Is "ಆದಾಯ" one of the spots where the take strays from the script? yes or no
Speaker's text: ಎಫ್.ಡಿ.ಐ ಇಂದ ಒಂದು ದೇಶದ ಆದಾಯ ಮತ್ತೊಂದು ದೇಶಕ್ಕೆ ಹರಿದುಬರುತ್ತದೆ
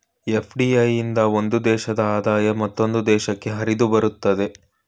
no